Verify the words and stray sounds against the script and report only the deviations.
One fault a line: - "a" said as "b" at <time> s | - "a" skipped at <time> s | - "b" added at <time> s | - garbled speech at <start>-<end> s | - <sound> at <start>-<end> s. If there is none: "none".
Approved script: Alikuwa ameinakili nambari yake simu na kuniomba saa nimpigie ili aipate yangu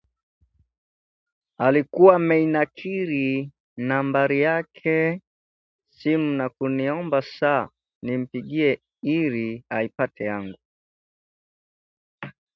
none